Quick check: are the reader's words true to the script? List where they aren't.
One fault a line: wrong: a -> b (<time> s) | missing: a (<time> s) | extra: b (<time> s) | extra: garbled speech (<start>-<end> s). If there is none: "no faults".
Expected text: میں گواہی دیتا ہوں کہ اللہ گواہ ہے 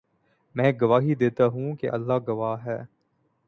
no faults